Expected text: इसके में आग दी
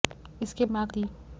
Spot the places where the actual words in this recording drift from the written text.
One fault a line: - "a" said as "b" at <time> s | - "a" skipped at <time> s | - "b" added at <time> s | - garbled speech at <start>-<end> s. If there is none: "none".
none